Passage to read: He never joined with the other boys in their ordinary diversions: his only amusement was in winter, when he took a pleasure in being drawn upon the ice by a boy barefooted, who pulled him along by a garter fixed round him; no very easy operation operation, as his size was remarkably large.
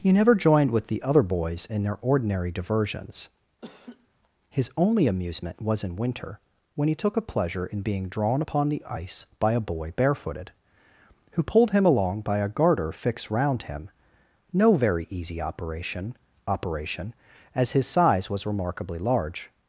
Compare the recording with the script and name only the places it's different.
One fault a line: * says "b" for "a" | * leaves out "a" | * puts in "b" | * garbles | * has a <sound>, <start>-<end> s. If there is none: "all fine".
* has a laugh, 3.6-4.1 s